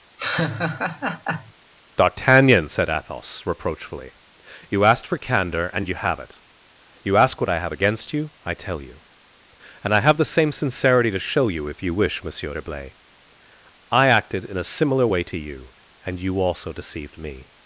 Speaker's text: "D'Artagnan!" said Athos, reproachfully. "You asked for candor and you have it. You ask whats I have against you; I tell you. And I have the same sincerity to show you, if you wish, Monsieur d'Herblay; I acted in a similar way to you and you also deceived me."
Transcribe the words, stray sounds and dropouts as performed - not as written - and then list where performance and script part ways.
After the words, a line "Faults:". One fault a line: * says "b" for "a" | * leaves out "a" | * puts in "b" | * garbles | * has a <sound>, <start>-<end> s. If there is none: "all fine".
"D'Artagnan!" said Athos, reproachfully. "You asked for candor and you have it. You ask what I have against you; I tell you. And I have the same sincerity to show you, if you wish, Monsieur d'Herblay; I acted in a similar way to you and you also deceived me."
Faults:
* has a laugh, 0.2-1.5 s
* says "what" for "whats"